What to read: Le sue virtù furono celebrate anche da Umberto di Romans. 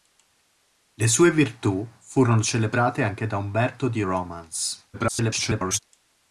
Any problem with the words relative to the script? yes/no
yes